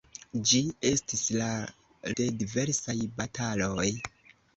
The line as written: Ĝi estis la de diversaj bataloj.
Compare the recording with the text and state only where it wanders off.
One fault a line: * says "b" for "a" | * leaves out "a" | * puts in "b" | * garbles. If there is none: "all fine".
all fine